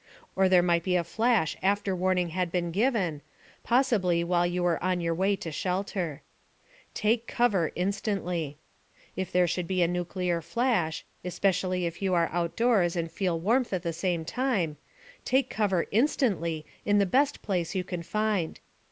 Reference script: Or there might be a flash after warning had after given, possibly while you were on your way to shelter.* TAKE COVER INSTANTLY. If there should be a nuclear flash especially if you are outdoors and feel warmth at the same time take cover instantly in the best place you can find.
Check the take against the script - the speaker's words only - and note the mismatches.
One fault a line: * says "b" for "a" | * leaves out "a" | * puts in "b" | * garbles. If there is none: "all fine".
* says "been" for "after"